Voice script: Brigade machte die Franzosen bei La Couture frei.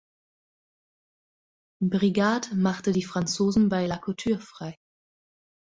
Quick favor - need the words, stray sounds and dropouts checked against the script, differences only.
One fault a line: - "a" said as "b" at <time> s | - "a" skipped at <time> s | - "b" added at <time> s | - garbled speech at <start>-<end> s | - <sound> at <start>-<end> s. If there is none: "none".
none